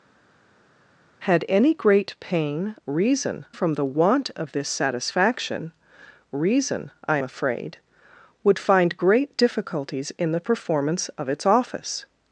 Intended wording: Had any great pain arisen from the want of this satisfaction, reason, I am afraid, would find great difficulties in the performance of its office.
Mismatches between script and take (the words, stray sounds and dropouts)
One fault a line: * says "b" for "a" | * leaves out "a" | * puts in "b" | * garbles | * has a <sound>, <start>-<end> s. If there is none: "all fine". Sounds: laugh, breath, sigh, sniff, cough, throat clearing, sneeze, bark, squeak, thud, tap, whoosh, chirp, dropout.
* says "reason" for "arisen"
* leaves out "am"